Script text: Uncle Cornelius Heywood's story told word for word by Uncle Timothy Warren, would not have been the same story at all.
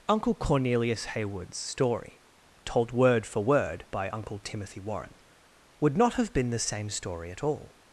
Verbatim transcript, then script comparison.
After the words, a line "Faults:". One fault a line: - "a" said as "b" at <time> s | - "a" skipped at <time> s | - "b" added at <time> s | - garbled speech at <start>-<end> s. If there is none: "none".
Uncle Cornelius Heywood's story told word for word by Uncle Timothy Warren, would not have been the same story at all.
Faults:
none